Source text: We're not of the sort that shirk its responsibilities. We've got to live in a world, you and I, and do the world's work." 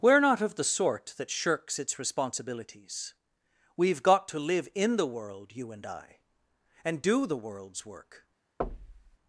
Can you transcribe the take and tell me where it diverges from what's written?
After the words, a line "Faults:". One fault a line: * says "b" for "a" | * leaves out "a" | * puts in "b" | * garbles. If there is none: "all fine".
We're not of the sort that shirks its responsibilities. We've got to live in the world, you and I, and do the world's work."
Faults:
* says "shirks" for "shirk"
* says "the" for "a"